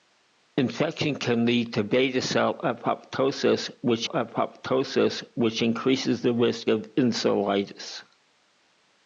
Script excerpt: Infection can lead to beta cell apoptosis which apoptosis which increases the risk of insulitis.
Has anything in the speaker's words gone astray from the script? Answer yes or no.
no